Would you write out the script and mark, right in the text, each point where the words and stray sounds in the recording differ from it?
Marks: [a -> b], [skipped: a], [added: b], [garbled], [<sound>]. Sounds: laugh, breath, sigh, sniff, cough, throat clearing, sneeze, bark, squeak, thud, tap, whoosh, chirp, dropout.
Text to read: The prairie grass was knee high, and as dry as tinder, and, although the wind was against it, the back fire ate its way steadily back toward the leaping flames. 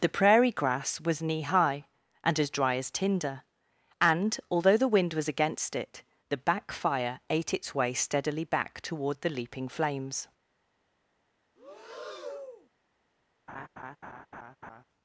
The prairie grass was knee high, and as dry as tinder, and, although the wind was against it, the back fire ate its way steadily back toward the leaping flames. [breath] [laugh]